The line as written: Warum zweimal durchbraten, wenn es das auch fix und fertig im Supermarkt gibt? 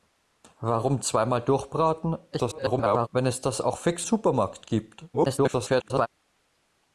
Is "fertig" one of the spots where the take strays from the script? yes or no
yes